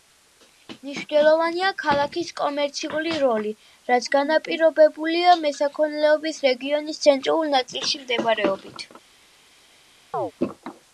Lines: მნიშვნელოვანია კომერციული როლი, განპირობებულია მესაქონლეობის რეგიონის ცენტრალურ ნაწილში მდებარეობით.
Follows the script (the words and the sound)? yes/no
no